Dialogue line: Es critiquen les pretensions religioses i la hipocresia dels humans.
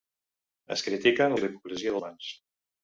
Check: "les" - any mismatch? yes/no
yes